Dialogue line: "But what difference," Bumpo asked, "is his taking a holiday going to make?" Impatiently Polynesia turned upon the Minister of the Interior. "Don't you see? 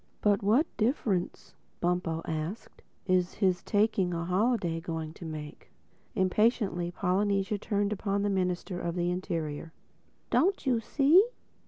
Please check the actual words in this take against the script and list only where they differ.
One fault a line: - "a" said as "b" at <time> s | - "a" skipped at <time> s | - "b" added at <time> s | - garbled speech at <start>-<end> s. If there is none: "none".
none